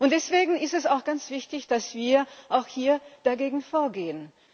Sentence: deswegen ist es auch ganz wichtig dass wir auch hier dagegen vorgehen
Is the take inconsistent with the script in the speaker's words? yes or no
no